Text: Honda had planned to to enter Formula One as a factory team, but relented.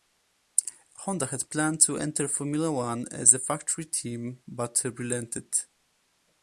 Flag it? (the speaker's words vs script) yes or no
yes